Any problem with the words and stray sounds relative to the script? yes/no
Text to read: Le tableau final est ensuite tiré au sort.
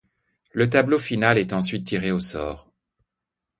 no